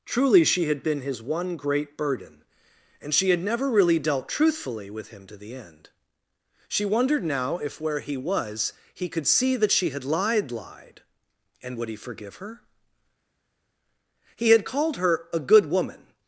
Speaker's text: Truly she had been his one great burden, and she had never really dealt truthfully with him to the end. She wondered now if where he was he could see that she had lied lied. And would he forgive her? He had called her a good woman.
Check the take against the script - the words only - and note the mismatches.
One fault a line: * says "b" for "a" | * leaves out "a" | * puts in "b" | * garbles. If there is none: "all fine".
all fine